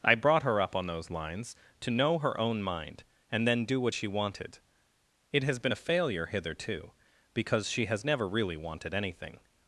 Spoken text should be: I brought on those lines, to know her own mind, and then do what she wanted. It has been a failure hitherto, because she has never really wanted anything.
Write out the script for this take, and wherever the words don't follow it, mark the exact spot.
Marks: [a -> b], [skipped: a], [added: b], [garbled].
I brought [added: her up] on those lines, to know her own mind, and then do what she wanted. It has been a failure hitherto, because she has never really wanted anything.